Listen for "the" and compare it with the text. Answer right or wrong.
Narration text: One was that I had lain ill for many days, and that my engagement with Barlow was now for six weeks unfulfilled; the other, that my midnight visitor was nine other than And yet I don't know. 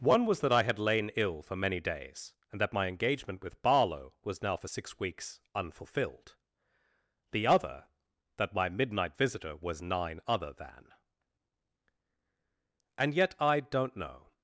right